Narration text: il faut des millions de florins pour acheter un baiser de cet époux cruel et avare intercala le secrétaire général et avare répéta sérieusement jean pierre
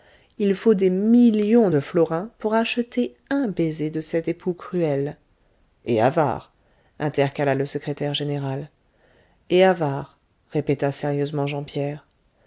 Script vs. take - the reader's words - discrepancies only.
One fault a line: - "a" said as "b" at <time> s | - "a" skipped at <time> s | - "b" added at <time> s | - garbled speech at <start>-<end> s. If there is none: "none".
none